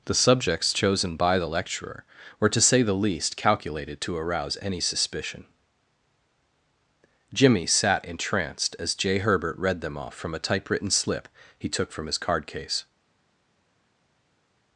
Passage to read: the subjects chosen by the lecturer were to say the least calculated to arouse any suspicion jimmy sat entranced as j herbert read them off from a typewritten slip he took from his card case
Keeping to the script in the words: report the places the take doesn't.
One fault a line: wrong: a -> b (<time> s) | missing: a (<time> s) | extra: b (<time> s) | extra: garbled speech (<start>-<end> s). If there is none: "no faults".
no faults